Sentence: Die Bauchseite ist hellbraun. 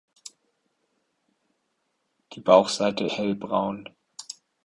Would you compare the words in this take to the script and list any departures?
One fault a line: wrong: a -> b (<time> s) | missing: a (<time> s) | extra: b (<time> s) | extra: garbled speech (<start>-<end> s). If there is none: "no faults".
missing: ist (3.1 s)